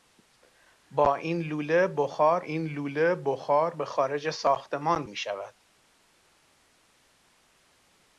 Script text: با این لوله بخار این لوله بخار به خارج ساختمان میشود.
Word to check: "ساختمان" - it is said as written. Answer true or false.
true